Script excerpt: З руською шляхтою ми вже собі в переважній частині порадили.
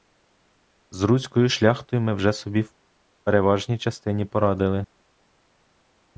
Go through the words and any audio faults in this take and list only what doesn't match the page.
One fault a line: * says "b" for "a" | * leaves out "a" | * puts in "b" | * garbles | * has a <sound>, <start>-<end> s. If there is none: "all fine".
all fine